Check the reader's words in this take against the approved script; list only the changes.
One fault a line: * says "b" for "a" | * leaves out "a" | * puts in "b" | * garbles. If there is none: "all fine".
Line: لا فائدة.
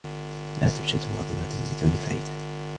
* puts in "توجد وظيفة بدون"